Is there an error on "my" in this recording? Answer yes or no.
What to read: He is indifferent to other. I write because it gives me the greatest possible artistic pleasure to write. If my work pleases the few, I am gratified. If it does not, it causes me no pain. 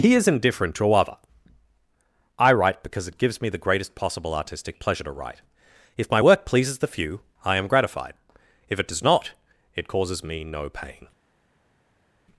no